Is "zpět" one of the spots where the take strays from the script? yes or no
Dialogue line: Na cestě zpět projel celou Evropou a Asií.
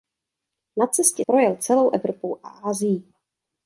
yes